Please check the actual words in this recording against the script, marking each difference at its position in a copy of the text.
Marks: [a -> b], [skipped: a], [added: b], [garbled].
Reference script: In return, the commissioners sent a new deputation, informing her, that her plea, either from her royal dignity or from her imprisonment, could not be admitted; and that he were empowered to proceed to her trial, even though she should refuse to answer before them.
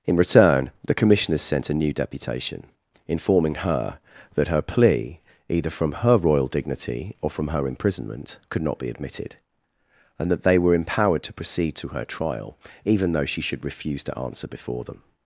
In return, the commissioners sent a new deputation, informing her, that her plea, either from her royal dignity or from her imprisonment, could not be admitted; and that [he -> they] were empowered to proceed to her trial, even though she should refuse to answer before them.